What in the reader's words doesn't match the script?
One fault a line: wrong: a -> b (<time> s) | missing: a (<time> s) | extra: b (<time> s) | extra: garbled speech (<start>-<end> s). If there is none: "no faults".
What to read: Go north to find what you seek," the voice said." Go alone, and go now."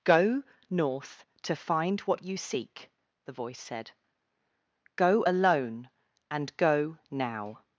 no faults